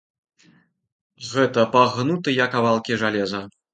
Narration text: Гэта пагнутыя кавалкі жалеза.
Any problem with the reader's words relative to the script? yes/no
no